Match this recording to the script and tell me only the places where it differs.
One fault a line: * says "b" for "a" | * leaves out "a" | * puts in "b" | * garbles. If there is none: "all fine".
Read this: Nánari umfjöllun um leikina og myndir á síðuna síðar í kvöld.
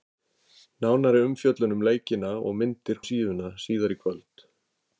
all fine